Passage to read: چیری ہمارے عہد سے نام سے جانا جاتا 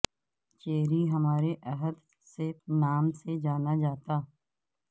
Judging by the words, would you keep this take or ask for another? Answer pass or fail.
pass